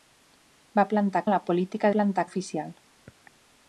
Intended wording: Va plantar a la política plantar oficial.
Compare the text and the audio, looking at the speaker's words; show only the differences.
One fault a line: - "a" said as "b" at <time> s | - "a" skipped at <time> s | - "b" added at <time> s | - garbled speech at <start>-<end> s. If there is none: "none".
none